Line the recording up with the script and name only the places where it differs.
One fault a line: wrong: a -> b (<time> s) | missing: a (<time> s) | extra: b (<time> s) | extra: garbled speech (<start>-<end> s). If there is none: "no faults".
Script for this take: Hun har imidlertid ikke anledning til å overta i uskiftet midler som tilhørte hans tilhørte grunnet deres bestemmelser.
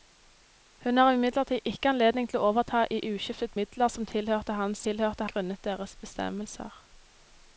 no faults